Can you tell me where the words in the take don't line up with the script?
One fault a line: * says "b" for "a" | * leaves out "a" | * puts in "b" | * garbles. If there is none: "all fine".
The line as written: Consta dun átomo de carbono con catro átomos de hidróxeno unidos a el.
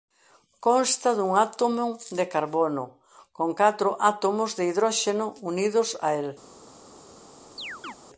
all fine